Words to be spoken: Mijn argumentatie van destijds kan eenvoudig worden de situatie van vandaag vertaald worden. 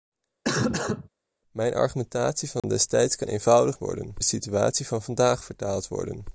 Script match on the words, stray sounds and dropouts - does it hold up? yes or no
no